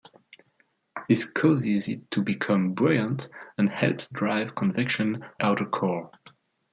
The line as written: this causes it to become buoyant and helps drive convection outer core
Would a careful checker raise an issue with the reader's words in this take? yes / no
no